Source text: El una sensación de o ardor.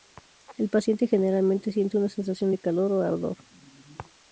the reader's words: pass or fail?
fail